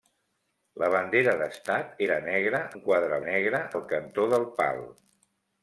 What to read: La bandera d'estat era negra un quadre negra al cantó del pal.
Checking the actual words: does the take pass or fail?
pass